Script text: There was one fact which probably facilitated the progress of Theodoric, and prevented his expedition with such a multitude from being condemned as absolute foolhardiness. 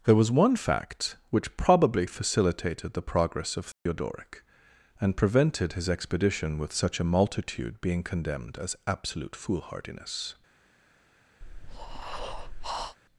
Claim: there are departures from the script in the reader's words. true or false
true